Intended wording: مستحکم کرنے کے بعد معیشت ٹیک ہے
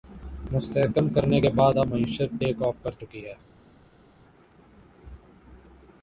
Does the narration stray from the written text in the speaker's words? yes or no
yes